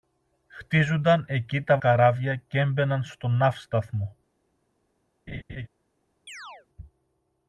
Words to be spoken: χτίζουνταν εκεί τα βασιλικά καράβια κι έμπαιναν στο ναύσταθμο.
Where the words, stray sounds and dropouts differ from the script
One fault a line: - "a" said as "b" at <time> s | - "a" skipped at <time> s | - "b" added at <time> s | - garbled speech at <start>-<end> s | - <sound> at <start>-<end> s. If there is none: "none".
- "βασιλικά" skipped at 1.8 s
- laugh at 5.3-5.7 s
- chirp at 6.3-6.7 s